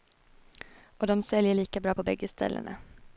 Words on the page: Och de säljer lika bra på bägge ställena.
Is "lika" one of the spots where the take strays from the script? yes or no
no